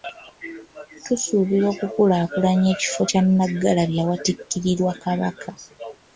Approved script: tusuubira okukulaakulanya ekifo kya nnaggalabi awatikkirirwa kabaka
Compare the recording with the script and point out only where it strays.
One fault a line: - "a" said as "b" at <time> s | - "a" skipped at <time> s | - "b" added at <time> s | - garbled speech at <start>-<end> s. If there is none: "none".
none